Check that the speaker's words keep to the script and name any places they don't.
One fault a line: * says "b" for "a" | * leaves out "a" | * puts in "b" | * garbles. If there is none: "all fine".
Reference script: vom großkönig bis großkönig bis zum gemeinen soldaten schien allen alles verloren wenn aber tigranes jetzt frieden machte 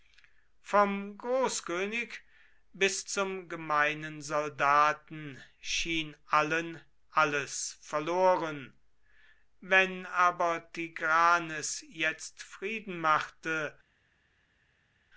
* leaves out "großkönig bis"